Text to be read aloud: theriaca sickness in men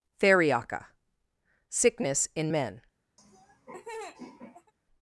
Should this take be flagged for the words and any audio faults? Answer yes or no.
yes